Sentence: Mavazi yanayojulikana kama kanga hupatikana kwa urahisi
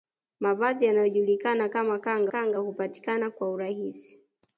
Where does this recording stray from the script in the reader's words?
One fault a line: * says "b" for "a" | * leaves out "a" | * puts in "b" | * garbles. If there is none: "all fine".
* puts in "kanga"